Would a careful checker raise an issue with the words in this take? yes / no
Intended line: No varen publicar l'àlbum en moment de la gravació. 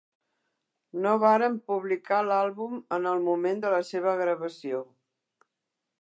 yes